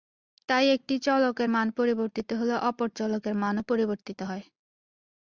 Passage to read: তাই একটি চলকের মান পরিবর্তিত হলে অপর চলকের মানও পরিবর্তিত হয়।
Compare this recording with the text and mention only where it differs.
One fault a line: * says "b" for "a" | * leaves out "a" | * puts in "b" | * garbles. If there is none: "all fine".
all fine